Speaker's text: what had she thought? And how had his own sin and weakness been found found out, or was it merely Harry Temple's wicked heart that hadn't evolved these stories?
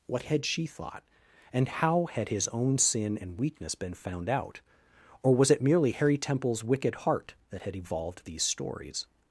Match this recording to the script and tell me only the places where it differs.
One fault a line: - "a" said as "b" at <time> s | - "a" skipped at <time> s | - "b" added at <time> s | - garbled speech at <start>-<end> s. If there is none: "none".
- "found" skipped at 4.3 s
- "hadn't" said as "had" at 7.6 s